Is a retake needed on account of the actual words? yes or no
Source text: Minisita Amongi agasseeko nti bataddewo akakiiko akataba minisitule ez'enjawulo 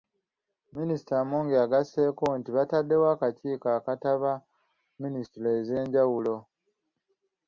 no